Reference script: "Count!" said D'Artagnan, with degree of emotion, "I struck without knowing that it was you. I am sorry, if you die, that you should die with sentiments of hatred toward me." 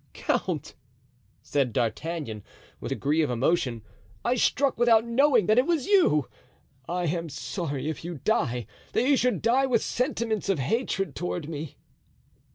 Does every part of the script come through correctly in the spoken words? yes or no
yes